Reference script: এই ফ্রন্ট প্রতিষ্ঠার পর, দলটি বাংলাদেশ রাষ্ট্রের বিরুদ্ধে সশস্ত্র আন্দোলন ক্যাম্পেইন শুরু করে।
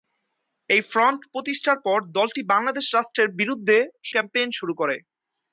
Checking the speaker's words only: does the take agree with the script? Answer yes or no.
no